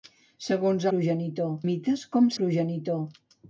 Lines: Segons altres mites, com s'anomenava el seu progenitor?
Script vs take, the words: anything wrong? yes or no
yes